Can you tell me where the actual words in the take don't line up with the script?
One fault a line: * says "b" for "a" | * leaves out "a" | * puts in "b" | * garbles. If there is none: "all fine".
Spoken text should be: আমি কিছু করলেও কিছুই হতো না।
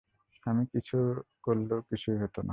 all fine